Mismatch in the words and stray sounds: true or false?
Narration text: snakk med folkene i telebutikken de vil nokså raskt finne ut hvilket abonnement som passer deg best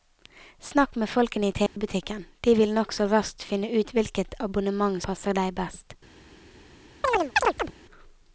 true